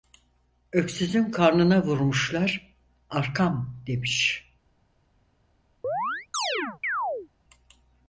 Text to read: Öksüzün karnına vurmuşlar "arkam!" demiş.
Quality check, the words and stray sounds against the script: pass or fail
fail